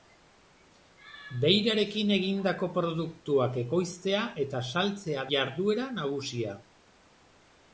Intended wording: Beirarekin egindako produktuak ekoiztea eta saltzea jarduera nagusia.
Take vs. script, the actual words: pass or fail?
pass